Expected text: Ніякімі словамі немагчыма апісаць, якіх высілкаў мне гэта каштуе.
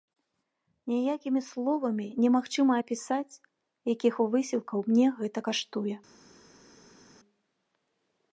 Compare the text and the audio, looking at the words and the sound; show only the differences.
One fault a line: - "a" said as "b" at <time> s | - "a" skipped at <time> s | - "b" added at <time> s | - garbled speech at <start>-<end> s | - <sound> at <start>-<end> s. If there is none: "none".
none